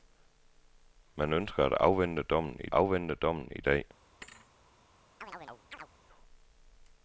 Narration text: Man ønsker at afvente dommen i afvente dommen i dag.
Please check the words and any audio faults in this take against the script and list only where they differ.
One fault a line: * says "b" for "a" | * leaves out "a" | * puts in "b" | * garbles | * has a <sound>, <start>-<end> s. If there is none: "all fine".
* has a thud, 4.2-4.5 s
* has a chirp, 5.2-5.9 s